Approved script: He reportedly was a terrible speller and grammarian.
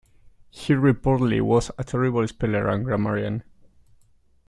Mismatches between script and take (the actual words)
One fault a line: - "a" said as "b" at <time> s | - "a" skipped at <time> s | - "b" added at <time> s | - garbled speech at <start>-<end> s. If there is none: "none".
none